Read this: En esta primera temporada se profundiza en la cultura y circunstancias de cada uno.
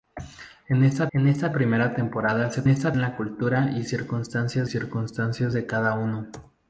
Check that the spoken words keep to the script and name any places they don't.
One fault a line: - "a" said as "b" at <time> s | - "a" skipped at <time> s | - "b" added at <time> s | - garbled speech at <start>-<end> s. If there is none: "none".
- "en esta" added at 1.1 s
- "profundiza" said as "esta" at 2.7 s
- "circunstancias" added at 4.6 s